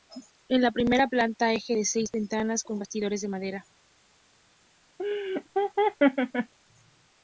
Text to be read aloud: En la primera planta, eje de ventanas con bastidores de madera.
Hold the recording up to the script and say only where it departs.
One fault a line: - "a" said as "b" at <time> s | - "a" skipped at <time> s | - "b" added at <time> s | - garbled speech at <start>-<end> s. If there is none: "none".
- "seis" added at 1.8 s